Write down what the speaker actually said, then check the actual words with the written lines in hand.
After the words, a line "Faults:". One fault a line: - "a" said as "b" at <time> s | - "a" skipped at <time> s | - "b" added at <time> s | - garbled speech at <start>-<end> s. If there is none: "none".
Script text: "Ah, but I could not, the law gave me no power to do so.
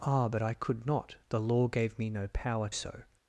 "Ah, but I could not, the law gave me no power so.
Faults:
- "to do" skipped at 2.7 s